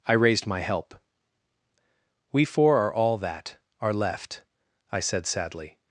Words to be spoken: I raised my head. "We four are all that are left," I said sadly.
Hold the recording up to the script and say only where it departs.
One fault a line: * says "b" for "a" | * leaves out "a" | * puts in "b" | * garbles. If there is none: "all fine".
* says "help" for "head"